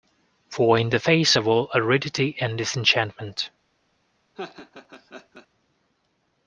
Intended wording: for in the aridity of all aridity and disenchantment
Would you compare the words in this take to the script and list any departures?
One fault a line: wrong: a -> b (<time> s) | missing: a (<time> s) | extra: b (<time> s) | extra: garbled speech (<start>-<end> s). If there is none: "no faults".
wrong: aridity -> face (0.9 s)